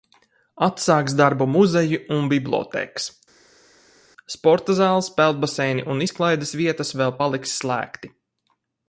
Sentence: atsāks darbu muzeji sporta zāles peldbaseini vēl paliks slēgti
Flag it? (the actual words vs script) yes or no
yes